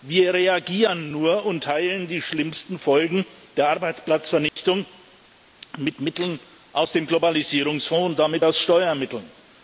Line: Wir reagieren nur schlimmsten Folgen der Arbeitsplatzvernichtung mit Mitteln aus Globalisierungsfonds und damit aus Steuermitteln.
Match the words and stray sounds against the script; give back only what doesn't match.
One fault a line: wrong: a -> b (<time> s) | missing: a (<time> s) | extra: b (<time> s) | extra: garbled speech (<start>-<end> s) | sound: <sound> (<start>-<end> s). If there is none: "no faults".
extra: und teilen die (1.4 s)
sound: dropout (4.5-4.6 s)
extra: dem (6.9 s)